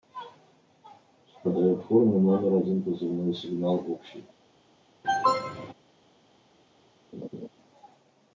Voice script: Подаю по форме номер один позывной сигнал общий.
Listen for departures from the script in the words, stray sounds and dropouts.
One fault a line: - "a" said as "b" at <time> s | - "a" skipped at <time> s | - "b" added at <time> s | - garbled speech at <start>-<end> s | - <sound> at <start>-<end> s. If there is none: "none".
- "по" skipped at 1.8 s
- cough at 5.0-5.7 s
- laugh at 7.1-7.5 s